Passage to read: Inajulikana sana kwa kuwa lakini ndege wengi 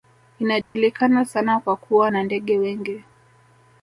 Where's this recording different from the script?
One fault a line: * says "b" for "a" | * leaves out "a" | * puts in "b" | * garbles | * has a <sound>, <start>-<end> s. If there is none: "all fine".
* has a dropout, 0.6-0.8 s
* says "na" for "lakini"